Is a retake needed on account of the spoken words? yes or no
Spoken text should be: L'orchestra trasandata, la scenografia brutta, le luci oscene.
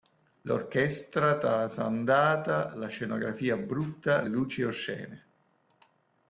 no